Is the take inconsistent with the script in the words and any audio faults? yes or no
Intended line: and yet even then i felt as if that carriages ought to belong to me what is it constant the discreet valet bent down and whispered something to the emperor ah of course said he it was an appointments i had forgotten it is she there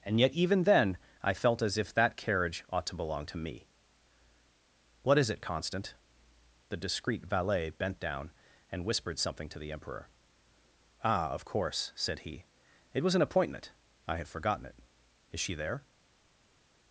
yes